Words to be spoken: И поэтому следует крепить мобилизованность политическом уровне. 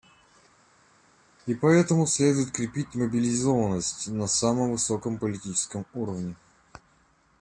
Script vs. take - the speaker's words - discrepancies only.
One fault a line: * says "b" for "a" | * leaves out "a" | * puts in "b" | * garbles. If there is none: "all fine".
* puts in "на самом высоком"